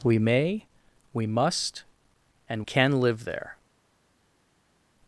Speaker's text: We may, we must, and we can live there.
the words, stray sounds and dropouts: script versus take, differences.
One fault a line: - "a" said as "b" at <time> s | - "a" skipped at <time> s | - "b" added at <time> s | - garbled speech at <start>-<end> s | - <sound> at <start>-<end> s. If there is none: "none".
- "we" skipped at 2.6 s